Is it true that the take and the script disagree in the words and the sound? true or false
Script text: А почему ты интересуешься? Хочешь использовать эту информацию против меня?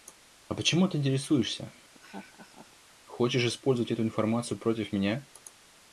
true